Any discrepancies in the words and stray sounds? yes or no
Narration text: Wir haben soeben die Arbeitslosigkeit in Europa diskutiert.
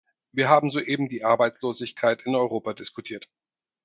no